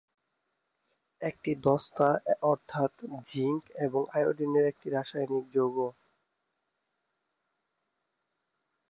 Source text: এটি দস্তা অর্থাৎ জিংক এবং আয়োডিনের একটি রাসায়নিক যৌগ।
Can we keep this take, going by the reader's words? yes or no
yes